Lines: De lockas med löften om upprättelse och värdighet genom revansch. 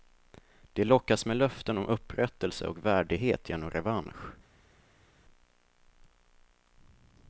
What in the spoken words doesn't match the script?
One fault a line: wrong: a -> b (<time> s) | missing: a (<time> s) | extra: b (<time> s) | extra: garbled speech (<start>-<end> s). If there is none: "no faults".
no faults